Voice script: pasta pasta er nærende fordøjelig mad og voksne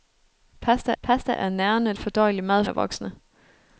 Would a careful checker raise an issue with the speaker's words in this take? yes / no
no